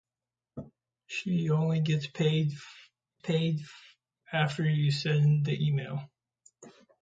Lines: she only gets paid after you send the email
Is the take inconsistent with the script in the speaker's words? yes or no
yes